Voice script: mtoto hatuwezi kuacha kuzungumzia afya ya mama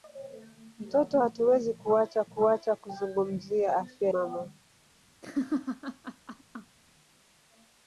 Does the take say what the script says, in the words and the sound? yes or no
no